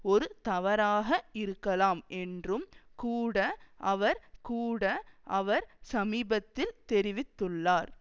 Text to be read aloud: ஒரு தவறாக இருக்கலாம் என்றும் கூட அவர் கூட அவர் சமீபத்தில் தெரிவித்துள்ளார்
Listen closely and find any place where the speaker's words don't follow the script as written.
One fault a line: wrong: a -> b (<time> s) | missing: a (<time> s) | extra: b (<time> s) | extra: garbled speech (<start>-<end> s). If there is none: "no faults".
no faults